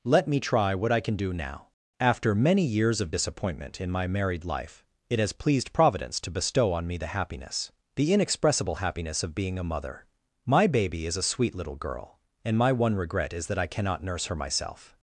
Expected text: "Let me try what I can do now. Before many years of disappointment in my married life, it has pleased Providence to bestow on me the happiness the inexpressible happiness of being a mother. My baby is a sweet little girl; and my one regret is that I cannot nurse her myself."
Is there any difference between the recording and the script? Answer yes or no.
yes